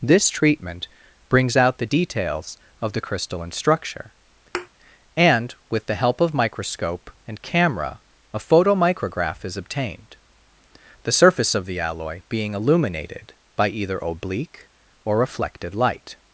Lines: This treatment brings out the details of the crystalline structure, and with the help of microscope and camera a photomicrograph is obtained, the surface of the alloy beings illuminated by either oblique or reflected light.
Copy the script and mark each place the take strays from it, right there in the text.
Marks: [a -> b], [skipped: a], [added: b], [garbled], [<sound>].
This treatment brings out the details of the crystalline structure, [thud] and with the help of microscope and camera a photomicrograph is obtained, the surface of the alloy [beings -> being] illuminated by either oblique or reflected light.